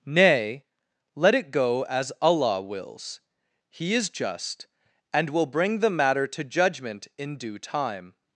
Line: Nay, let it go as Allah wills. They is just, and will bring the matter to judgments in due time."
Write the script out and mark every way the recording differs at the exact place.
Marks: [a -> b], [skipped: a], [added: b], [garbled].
Nay, let it go as Allah wills. [They -> He] is just, and will bring the matter to [judgments -> judgment] in due time."